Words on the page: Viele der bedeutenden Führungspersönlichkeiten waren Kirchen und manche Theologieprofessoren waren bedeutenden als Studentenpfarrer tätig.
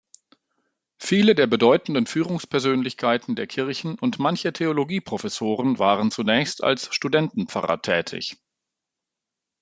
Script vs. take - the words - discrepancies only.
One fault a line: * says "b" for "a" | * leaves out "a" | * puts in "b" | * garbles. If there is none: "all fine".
* says "der" for "waren"
* says "zunächst" for "bedeutenden"